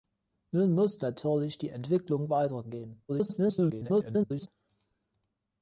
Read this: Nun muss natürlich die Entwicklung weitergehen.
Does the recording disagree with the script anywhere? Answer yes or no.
yes